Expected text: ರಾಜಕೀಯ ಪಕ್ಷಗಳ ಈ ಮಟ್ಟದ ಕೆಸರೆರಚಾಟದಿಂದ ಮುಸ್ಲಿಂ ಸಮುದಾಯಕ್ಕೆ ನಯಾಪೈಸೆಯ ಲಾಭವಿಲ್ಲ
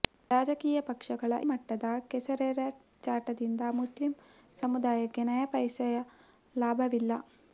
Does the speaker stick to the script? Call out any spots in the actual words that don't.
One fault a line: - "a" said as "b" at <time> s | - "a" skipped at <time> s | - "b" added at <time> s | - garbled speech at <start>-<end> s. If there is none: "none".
- "ಈ" skipped at 1.3 s